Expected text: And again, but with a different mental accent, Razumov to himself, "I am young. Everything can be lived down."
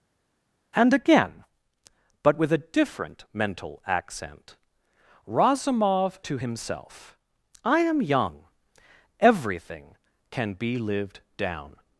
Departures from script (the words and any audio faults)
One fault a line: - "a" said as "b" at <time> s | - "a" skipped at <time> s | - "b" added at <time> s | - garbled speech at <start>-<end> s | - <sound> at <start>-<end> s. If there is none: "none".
none